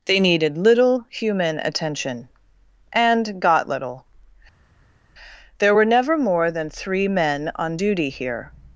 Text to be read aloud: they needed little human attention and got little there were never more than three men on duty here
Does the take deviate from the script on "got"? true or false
false